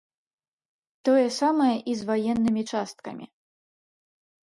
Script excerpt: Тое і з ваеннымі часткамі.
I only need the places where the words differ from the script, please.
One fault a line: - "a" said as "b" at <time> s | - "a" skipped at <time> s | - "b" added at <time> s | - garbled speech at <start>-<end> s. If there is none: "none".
- "самае" added at 1.4 s